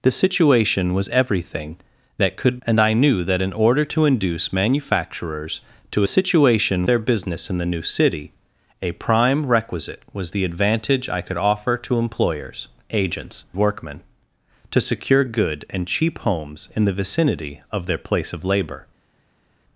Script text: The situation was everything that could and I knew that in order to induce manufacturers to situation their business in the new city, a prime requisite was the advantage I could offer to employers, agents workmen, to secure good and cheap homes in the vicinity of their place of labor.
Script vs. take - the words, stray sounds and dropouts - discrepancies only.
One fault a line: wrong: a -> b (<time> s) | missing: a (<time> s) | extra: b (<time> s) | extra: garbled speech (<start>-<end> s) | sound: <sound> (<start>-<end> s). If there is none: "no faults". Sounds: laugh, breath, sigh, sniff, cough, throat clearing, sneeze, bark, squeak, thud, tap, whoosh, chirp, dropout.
no faults